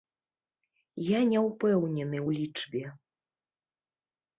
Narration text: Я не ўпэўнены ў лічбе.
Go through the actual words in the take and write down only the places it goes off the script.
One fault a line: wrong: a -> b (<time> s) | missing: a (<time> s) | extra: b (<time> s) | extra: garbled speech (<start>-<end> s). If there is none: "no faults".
no faults